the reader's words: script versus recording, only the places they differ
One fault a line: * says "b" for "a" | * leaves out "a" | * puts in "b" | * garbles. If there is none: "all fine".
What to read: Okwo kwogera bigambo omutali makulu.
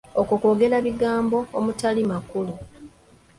all fine